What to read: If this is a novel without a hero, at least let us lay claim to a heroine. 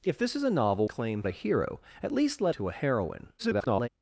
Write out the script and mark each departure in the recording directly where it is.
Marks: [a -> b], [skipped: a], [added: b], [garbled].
If this is a novel [without -> claim] a hero, at least let [skipped: us lay claim] to a heroine. [garbled]